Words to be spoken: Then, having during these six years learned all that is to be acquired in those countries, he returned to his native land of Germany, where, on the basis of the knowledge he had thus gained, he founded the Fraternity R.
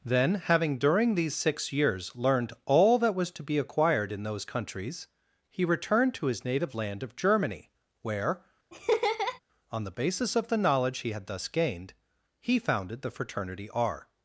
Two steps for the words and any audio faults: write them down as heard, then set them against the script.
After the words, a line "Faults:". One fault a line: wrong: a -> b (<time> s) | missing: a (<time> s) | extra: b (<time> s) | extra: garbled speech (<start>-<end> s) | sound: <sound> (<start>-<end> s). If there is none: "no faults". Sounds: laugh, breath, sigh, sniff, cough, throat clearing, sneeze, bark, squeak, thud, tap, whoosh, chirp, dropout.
Then, having during these six years learned all that was to be acquired in those countries, he returned to his native land of Germany, where, on the basis of the knowledge he had thus gained, he founded the Fraternity R.
Faults:
wrong: is -> was (3.1 s)
sound: laugh (8.7-9.4 s)